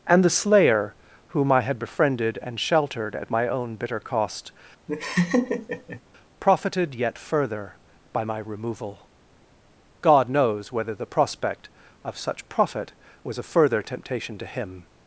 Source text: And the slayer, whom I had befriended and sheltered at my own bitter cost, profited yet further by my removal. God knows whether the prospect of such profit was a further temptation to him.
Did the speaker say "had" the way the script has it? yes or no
yes